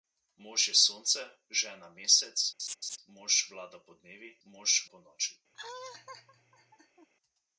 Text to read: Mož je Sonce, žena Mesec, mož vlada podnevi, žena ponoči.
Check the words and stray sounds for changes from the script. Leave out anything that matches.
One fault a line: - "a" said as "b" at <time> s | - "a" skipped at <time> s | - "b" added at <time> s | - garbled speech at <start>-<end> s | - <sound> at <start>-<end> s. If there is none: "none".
- laugh at 2.6-3.0 s
- "žena" said as "mož" at 4.4 s
- laugh at 5.5-7.1 s